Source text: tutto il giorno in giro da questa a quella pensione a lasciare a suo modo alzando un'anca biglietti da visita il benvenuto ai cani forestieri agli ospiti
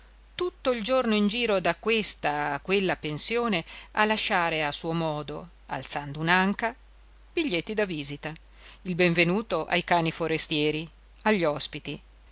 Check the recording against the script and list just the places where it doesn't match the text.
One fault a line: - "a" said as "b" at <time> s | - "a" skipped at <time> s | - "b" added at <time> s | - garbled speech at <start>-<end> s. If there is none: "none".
none